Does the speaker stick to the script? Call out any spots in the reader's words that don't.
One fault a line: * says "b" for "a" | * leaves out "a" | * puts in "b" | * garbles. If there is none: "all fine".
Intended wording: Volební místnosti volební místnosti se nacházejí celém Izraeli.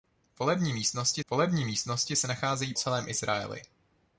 all fine